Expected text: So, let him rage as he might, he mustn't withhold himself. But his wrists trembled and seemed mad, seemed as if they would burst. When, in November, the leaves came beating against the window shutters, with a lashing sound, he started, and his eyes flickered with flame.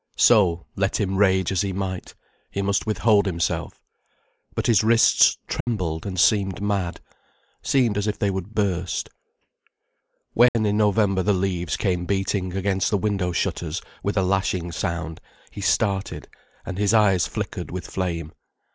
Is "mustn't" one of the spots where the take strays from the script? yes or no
yes